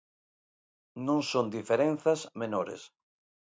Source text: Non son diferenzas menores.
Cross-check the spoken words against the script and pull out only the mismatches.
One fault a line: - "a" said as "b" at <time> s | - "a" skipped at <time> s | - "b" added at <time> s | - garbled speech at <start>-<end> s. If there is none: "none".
none